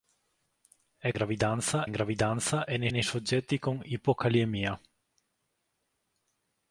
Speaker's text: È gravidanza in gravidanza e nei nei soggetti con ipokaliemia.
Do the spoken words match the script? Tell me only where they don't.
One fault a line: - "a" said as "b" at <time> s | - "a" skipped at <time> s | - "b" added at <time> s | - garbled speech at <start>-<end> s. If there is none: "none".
none